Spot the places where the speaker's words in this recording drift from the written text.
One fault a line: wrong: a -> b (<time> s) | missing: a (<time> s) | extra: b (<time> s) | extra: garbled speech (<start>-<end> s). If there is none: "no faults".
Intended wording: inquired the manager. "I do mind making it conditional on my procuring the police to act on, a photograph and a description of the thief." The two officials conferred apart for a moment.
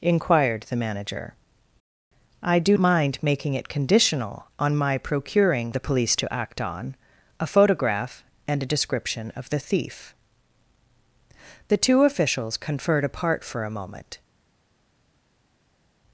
no faults